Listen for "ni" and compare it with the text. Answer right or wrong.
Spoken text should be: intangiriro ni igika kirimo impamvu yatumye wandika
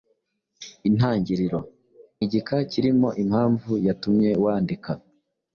wrong